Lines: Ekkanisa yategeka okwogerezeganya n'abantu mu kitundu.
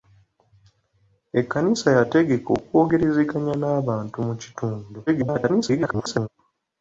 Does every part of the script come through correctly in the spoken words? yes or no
no